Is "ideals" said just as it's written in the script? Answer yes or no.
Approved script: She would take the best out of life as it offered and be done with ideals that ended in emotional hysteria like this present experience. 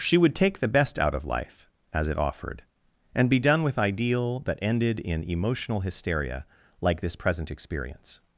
no